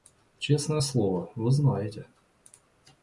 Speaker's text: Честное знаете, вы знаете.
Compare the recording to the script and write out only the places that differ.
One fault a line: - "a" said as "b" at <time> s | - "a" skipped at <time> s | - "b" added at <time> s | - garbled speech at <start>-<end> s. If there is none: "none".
- "знаете" said as "слово" at 0.8 s